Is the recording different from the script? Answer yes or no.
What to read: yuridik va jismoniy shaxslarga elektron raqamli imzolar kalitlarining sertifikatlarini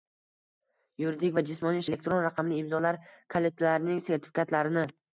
yes